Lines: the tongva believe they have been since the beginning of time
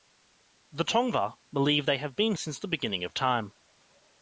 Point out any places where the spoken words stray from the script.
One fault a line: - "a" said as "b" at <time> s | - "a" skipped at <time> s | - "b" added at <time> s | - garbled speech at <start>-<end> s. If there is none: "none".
none